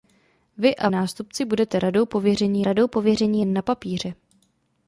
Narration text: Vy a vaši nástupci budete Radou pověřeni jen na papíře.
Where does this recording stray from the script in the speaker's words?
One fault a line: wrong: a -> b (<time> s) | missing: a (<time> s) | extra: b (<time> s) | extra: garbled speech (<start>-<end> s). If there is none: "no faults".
missing: vaši (0.9 s)
extra: Radou pověřeni (2.6 s)